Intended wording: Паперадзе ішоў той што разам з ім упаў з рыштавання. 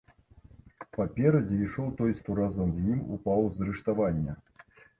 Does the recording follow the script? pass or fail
pass